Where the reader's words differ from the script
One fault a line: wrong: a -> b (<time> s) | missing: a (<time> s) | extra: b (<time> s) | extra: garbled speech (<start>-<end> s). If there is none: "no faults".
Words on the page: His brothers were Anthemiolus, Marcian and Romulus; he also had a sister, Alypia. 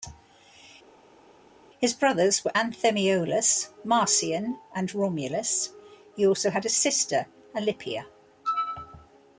no faults